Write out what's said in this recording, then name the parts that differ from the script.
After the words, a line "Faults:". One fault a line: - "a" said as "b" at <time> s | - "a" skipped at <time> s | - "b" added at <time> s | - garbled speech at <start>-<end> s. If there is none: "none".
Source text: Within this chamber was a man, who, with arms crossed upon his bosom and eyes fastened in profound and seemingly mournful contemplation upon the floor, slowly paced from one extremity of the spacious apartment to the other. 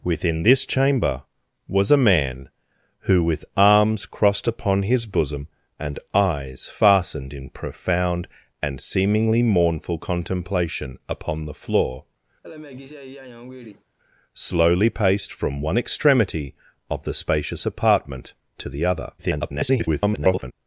Within this chamber was a man, who, with arms crossed upon his bosom and eyes fastened in profound and seemingly mournful contemplation upon the floor, slowly paced from one extremity of the spacious apartment to the other. [garbled]
Faults:
- garbled speech at 19.2-20.5 s